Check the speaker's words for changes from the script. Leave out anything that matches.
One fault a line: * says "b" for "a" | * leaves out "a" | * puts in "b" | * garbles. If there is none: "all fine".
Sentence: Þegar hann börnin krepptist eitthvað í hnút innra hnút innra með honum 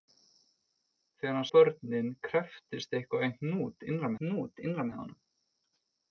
all fine